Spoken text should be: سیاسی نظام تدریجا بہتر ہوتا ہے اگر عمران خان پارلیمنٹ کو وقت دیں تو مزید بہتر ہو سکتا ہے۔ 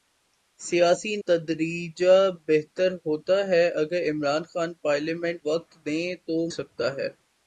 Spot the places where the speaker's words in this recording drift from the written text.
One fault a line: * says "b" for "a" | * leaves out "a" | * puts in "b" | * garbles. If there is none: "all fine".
* leaves out "نظام"
* leaves out "کو"
* leaves out "مزید بہتر ہو"